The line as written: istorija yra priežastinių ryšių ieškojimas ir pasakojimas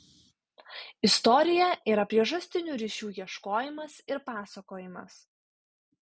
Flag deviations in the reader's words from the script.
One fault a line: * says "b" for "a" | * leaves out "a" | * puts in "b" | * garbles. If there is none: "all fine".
all fine